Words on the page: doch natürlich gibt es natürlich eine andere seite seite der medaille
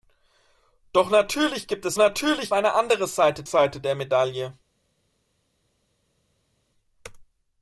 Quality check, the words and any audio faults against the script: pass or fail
pass